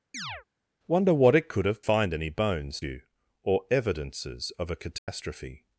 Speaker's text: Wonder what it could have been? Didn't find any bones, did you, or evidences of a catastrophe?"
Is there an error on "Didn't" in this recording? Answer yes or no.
yes